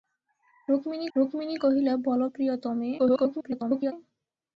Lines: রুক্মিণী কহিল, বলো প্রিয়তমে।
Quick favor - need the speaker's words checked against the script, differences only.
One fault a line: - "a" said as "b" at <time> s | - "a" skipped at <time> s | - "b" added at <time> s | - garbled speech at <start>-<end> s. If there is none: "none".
- "রুক্মিণী" added at 1.1 s
- garbled speech at 3.0-3.9 s